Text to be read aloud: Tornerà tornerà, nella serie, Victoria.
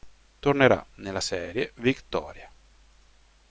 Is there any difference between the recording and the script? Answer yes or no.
yes